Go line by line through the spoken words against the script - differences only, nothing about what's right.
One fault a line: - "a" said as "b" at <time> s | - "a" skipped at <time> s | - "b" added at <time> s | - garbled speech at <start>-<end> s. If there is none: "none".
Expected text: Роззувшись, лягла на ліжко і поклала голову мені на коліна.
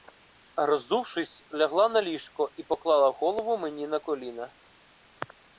none